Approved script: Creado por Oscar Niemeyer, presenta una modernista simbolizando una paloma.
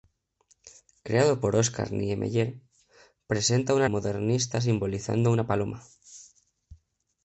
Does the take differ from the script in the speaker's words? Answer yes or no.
no